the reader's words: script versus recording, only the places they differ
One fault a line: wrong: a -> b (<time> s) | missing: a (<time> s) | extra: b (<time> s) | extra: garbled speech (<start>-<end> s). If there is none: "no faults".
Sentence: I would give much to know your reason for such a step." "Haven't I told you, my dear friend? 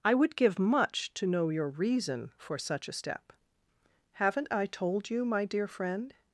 no faults